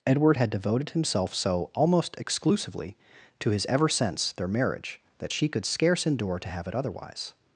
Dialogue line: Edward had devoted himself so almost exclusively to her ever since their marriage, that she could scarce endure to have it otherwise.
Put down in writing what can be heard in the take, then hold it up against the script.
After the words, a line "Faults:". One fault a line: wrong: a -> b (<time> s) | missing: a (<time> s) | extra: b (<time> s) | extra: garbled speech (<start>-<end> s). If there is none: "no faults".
Edward had devoted himself so almost exclusively to his ever since their marriage, that she could scarce endure to have it otherwise.
Faults:
wrong: her -> his (3.5 s)